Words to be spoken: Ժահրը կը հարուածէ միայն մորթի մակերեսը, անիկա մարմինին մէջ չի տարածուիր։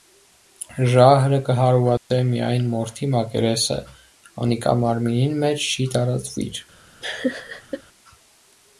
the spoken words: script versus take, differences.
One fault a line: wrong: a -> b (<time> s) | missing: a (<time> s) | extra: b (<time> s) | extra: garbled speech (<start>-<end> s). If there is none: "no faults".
no faults